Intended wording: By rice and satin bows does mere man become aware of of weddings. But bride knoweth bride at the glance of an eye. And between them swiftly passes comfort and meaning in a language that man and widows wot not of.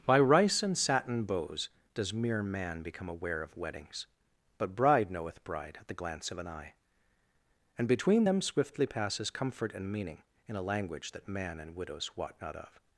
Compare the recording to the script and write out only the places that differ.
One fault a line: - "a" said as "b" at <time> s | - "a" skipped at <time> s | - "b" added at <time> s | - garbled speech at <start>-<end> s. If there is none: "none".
- "of" skipped at 3.5 s